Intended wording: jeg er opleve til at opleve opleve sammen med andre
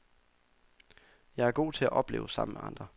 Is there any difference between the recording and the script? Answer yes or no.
yes